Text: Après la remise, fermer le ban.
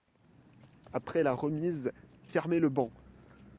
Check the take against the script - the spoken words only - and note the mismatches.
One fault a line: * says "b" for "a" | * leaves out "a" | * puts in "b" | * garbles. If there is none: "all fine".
all fine